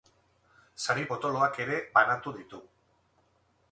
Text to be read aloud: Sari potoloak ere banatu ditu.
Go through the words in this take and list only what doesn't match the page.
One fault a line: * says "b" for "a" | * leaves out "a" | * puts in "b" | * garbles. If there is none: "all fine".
all fine